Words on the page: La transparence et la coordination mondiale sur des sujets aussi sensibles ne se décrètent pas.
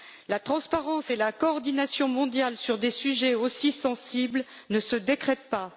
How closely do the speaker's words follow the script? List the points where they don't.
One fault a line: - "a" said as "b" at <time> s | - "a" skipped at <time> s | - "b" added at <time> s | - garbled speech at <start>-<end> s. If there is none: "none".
none